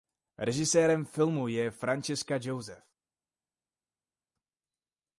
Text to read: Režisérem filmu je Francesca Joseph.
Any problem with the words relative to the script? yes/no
no